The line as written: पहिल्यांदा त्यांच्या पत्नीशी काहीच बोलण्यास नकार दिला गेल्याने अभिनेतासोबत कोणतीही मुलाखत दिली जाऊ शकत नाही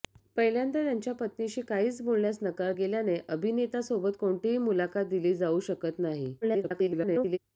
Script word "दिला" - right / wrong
wrong